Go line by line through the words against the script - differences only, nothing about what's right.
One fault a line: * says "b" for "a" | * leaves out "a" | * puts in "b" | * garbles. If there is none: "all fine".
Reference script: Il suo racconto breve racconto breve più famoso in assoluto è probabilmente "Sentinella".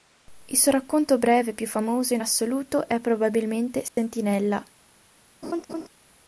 * leaves out "racconto breve"